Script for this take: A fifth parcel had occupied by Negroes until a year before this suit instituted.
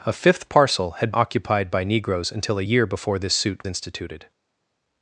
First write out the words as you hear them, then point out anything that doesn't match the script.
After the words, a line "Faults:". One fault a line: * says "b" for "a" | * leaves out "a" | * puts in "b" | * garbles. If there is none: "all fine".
A fifth parcel had occupied by Negroes until a year before this suit instituted.
Faults:
all fine